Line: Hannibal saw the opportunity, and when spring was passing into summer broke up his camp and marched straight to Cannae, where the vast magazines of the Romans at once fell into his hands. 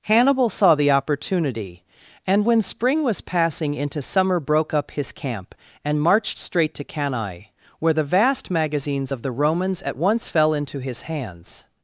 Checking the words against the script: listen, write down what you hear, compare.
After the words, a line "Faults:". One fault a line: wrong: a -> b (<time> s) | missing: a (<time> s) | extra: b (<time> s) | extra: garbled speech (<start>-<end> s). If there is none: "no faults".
Hannibal saw the opportunity, and when spring was passing into summer broke up his camp and marched straight to Cannae, where the vast magazines of the Romans at once fell into his hands.
Faults:
no faults